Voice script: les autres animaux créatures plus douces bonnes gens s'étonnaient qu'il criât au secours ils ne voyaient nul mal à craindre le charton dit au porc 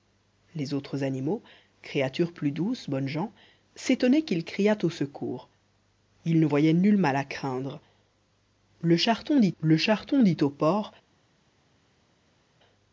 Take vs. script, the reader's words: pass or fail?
fail